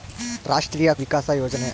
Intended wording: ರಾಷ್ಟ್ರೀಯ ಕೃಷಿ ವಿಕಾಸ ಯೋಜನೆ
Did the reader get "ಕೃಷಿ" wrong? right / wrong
wrong